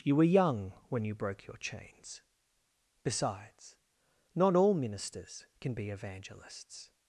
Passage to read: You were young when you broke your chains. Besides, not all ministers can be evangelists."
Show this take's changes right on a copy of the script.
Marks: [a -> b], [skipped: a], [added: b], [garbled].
You were young when you broke your chains. Besides, not all ministers can be evangelists."